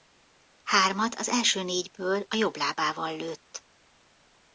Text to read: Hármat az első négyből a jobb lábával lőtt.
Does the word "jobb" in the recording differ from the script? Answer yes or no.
no